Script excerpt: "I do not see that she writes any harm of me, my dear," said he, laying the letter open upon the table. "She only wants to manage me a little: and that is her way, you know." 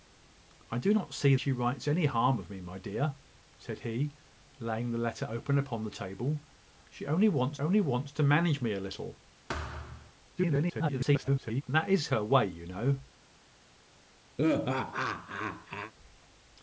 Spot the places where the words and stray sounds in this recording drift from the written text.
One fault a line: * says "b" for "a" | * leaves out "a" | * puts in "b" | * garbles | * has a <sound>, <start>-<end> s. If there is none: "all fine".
* leaves out "that"
* puts in "only wants"
* has a thud, 9.5-10.1 s
* garbles
* has a laugh, 14.4-15.9 s